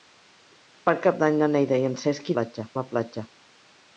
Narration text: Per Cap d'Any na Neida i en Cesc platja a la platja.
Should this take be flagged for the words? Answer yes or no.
no